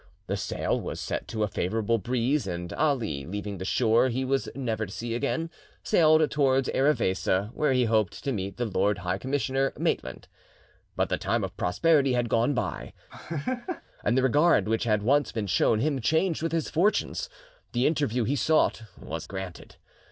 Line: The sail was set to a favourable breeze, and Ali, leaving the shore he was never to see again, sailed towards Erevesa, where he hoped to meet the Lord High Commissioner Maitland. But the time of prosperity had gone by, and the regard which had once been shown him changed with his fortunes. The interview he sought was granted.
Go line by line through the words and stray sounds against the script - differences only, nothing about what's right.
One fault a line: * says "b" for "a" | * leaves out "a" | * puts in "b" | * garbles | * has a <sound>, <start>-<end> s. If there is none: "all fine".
* has a laugh, 13.1-13.8 s